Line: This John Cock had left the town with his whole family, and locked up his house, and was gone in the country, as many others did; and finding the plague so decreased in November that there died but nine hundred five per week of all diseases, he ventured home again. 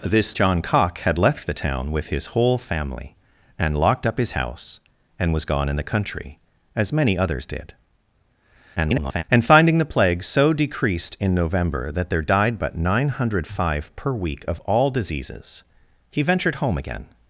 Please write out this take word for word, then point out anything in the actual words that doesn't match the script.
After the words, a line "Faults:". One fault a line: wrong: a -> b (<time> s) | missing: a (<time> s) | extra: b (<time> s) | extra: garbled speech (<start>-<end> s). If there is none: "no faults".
This John Cock had left the town with his whole family, and locked up his house, and was gone in the country, as many others did; [garbled] and finding the plague so decreased in November that there died but nine hundred five per week of all diseases, he ventured home again.
Faults:
extra: garbled speech (8.8-9.2 s)